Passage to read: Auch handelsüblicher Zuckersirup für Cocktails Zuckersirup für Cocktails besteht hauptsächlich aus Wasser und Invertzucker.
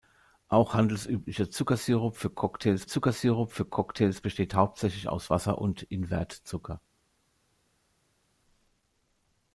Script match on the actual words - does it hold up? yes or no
yes